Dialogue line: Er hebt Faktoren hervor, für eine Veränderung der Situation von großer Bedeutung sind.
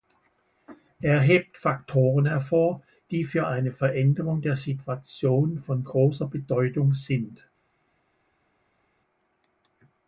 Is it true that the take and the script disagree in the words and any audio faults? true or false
true